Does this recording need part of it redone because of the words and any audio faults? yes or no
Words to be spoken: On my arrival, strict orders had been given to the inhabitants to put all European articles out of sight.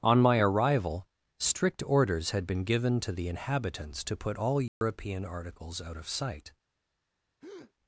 yes